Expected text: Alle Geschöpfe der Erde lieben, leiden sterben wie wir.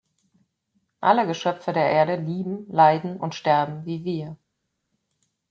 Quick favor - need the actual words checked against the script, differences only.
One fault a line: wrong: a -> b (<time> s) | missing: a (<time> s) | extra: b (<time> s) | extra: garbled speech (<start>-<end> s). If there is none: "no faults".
extra: und (3.1 s)